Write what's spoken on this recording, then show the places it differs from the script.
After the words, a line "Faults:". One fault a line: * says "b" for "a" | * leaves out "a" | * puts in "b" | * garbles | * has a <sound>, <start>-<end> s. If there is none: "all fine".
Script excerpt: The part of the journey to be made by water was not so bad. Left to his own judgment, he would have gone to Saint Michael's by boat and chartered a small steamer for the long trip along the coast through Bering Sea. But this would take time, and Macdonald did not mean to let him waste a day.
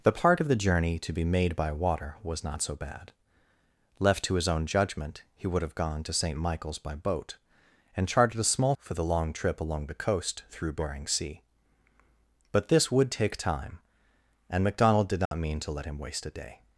The part of the journey to be made by water was not so bad. Left to his own judgment, he would have gone to Saint Michael's by boat and chartered a small for the long trip along the coast through Bering Sea. But this would take time, and Macdonald did not mean to let him waste a day.
Faults:
* leaves out "steamer"
* has a dropout, 15.3-15.3 s